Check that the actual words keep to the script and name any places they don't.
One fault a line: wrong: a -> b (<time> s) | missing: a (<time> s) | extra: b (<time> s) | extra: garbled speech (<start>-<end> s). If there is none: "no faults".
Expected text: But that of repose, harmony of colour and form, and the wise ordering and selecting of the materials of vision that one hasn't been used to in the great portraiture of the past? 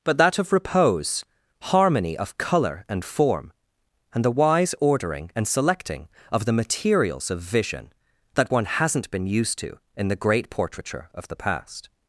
no faults